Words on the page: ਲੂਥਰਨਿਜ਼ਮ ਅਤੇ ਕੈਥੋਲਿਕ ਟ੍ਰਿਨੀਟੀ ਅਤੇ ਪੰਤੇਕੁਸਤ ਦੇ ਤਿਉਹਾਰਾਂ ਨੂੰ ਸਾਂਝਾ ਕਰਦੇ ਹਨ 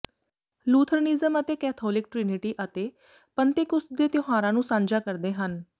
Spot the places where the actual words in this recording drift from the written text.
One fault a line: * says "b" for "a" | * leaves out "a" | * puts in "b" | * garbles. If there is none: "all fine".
all fine